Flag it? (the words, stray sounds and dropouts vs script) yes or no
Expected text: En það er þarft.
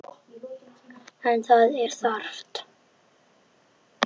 no